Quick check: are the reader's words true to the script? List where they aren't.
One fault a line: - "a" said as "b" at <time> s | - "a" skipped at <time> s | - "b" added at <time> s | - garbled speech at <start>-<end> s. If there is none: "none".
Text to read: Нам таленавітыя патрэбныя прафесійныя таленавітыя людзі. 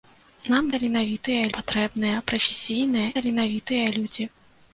none